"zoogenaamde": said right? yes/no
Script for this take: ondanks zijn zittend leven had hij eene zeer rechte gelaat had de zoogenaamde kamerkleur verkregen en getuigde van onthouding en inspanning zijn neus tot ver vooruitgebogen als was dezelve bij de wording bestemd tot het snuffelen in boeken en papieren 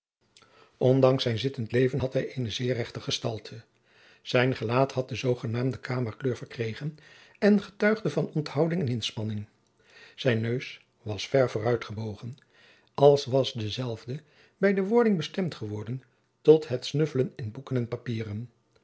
yes